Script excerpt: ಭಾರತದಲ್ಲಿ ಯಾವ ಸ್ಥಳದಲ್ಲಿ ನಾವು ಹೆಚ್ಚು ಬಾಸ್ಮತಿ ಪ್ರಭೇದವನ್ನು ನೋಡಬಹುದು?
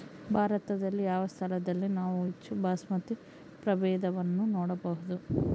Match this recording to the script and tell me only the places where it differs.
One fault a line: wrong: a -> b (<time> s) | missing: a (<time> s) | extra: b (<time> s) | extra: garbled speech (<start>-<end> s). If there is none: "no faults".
no faults